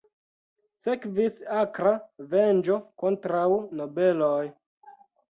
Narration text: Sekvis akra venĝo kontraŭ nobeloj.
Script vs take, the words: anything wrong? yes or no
no